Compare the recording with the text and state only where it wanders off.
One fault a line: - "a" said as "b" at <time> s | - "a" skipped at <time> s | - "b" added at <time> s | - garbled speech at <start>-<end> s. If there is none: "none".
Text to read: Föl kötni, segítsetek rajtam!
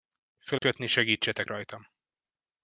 none